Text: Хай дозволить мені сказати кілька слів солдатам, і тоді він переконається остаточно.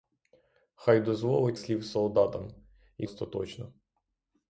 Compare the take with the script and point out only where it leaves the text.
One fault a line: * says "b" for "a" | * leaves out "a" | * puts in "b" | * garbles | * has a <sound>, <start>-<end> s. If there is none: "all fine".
* leaves out "мені сказати кілька"
* leaves out "тоді він переконається"